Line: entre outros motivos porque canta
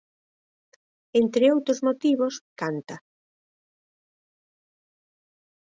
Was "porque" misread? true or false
true